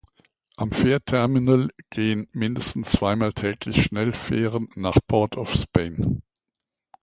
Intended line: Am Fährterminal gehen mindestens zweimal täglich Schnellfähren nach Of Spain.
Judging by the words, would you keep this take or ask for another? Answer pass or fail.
fail